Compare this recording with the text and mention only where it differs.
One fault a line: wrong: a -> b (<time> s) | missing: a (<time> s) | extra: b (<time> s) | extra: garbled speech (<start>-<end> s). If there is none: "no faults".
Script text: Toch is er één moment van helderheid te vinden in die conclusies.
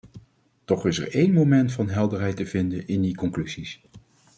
no faults